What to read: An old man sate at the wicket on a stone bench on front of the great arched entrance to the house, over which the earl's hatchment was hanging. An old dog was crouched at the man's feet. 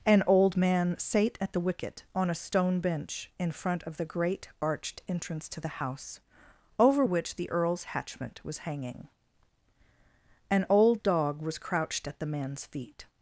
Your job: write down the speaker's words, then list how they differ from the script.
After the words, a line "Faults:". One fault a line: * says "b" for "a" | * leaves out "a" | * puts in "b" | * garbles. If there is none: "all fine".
An old man sate at the wicket on a stone bench in front of the great arched entrance to the house, over which the earl's hatchment was hanging. An old dog was crouched at the man's feet.
Faults:
* says "in" for "on"